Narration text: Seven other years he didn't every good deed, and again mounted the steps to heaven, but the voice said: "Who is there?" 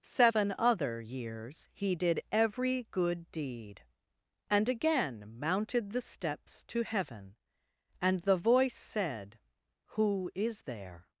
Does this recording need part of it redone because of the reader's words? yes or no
yes